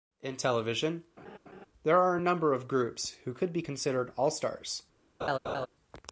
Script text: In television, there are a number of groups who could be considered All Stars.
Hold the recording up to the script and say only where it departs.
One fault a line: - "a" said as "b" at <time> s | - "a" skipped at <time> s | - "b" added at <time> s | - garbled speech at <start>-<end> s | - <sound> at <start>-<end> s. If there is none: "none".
- laugh at 1.2-1.7 s
- laugh at 5.2-5.7 s